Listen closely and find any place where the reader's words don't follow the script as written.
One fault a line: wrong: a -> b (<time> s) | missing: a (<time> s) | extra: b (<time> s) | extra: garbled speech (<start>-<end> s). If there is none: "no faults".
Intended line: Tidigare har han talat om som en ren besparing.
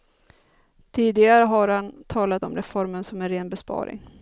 extra: reformen (2.5 s)